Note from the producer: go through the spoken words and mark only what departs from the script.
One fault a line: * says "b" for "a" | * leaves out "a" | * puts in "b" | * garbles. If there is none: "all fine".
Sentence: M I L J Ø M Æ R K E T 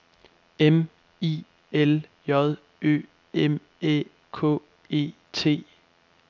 * leaves out "R"